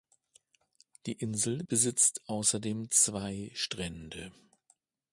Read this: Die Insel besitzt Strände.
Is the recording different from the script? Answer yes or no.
yes